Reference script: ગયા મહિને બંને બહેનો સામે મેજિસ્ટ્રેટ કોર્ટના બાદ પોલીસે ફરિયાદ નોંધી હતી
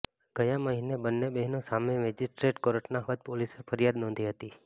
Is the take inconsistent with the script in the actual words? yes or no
no